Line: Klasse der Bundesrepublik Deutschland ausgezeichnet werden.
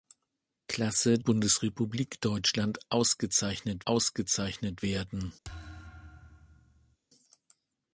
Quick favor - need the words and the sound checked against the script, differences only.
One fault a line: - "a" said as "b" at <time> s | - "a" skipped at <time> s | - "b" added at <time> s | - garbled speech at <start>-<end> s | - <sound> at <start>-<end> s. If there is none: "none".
- "der" skipped at 1.2 s
- "ausgezeichnet" added at 3.8 s
- thud at 5.4-7.0 s